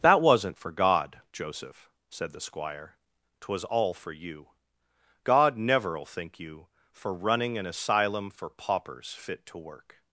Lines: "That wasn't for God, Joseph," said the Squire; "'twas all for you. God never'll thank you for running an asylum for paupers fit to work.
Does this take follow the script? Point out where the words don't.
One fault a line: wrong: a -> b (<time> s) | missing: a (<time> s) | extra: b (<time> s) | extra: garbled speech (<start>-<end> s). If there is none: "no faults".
wrong: thank -> think (6.0 s)